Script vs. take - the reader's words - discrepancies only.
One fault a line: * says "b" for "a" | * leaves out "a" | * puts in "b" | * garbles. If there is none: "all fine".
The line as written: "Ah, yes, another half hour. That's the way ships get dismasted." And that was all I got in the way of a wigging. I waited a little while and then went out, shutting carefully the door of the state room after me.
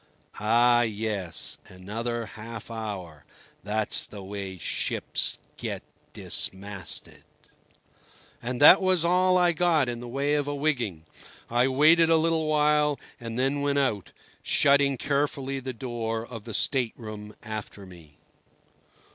all fine